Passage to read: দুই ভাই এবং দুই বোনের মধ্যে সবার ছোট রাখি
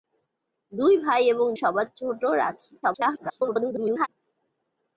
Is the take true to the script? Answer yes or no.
no